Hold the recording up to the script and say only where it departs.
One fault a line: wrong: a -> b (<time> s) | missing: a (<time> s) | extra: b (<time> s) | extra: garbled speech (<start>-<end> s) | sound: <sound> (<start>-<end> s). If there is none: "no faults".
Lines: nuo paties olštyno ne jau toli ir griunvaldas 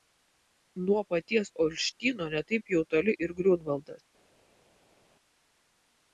extra: taip (2.5 s)